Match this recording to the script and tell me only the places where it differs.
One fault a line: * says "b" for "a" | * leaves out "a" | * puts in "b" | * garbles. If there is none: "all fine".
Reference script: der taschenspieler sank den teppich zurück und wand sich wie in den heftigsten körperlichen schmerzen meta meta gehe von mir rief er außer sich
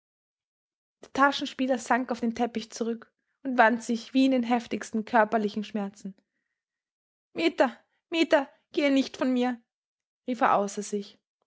* puts in "auf"
* puts in "nicht"